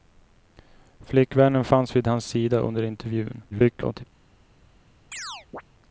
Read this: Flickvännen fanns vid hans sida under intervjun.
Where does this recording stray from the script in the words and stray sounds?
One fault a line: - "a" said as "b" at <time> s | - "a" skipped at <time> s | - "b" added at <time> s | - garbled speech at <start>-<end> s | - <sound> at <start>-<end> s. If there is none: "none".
- garbled speech at 3.5-4.0 s
- chirp at 5.1-5.6 s